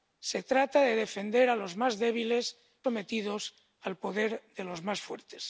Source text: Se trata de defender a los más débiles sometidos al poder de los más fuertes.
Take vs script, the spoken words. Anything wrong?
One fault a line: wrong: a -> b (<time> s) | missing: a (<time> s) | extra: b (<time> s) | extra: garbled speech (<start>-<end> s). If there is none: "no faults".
no faults